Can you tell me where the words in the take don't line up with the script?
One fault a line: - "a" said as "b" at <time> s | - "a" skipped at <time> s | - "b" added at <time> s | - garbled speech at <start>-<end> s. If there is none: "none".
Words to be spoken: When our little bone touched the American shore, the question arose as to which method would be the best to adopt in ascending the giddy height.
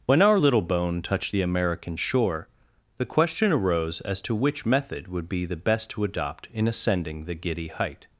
none